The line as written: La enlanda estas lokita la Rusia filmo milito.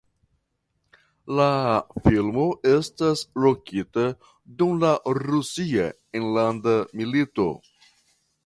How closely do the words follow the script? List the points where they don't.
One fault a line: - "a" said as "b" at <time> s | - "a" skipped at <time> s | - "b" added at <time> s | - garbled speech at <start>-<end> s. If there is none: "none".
- "enlanda" said as "filmo" at 2.1 s
- "dum" added at 4.6 s
- "filmo" said as "enlanda" at 6.2 s